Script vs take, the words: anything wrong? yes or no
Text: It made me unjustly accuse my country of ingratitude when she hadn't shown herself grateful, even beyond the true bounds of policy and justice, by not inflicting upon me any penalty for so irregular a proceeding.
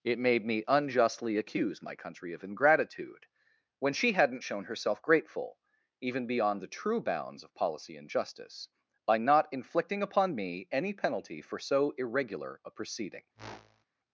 no